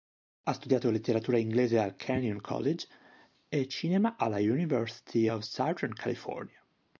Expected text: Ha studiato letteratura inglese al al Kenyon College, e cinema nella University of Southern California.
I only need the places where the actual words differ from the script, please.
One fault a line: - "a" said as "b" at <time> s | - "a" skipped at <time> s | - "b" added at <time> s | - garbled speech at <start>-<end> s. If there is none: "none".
- "al" skipped at 1.9 s
- "nella" said as "alla" at 4.2 s